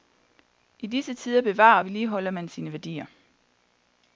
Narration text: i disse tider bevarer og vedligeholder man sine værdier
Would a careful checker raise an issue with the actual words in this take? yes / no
no